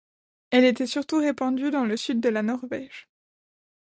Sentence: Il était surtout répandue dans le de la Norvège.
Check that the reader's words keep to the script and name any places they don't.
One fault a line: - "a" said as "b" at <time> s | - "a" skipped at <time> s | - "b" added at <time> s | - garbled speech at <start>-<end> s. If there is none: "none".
- "Il" said as "Elle" at 0.5 s
- "sud" added at 1.9 s